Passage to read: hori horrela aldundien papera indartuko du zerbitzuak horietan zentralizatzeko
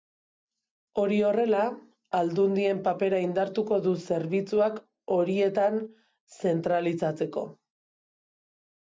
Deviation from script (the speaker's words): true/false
false